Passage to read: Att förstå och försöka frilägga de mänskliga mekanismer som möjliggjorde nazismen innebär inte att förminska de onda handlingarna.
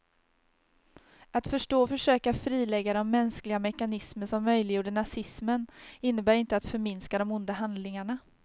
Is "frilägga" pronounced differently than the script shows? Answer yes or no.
no